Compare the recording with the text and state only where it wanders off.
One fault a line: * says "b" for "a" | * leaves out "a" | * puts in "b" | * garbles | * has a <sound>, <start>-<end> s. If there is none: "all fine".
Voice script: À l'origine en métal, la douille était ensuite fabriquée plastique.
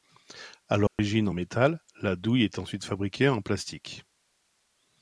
* has a dropout, 0.9-1.0 s
* says "est" for "était"
* puts in "en"